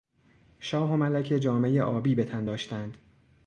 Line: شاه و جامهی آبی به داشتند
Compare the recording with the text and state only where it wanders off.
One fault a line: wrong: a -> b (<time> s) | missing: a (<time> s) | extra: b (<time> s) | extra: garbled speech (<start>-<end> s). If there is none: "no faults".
extra: ملکه (1.0 s)
extra: تن (2.2 s)